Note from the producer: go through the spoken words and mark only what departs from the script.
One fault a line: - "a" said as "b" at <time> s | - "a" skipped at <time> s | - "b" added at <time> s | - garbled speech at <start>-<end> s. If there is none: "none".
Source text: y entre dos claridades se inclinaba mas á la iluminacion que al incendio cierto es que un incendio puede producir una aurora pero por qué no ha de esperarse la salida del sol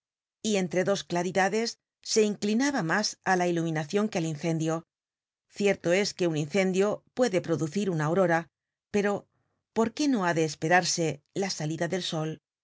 none